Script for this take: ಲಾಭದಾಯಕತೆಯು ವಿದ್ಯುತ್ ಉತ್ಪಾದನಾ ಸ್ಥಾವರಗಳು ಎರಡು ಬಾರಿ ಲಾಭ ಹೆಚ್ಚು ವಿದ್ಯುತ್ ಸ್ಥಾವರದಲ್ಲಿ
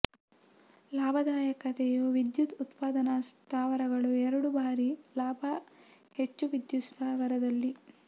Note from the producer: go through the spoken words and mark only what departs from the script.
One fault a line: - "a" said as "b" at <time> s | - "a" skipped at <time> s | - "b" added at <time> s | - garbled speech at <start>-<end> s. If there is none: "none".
none